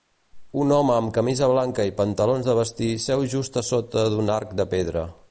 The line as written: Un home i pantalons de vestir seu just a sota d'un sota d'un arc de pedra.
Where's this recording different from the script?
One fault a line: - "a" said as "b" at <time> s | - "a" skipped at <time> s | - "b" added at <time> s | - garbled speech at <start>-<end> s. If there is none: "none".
- "amb camisa blanca" added at 0.9 s
- "sota d'un" skipped at 4.3 s